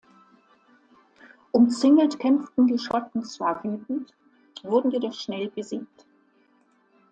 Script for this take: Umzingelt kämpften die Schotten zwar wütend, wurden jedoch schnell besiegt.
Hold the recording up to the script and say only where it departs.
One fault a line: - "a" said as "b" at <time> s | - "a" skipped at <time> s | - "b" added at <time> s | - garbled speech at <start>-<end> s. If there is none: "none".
none